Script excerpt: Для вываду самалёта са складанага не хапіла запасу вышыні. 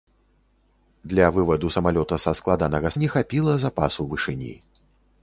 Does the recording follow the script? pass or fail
pass